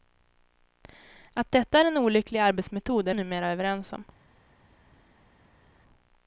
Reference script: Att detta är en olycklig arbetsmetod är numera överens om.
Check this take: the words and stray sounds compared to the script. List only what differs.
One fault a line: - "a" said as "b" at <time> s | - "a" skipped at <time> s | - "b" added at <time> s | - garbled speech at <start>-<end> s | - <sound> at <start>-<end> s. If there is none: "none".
none